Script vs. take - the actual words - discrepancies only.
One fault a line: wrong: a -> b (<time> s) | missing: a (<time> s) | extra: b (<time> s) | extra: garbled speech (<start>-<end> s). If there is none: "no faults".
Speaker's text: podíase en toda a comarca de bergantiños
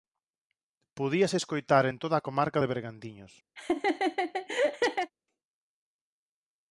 extra: escoitar (1.4 s)